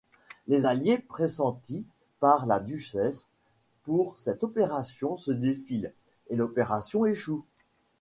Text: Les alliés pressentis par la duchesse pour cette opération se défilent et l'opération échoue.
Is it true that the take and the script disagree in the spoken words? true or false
false